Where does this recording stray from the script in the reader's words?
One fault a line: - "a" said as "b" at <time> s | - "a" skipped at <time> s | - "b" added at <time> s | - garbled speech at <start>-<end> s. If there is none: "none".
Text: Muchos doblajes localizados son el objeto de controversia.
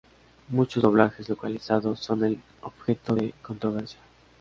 none